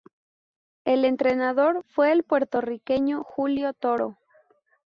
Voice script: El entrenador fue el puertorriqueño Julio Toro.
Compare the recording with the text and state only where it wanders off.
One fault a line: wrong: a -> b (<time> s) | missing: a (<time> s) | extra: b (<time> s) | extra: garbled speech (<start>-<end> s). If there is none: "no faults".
no faults